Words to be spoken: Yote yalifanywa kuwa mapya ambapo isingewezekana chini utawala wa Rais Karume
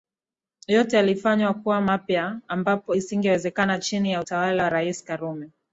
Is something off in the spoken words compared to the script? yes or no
yes